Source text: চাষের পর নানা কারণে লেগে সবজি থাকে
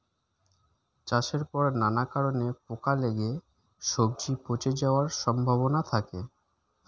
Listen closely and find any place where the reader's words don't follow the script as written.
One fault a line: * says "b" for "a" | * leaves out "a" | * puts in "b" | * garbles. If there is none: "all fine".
* puts in "পোকা"
* puts in "পচে যাওয়ার সম্ভাবনা"